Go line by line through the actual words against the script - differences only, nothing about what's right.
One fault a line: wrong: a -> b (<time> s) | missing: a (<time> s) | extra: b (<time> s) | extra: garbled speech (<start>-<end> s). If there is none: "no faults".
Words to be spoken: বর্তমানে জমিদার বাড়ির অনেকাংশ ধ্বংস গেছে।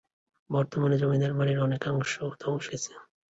no faults